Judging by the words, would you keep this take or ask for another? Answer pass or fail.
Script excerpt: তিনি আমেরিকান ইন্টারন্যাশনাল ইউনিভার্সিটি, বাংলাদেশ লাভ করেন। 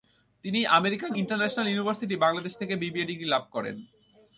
fail